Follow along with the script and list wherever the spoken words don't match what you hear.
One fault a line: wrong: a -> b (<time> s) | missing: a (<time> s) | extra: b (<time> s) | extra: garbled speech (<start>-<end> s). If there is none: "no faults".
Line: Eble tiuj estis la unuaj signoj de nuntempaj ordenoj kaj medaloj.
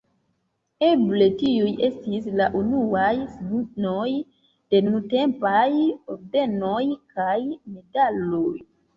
no faults